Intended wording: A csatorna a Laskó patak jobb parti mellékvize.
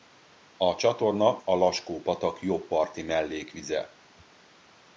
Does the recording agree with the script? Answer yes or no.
yes